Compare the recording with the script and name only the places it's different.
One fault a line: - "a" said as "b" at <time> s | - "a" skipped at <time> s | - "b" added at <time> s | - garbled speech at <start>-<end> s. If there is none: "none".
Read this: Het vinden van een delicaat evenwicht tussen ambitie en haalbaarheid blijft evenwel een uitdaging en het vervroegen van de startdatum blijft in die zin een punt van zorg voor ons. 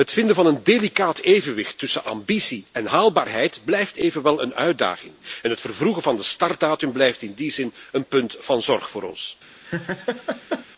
none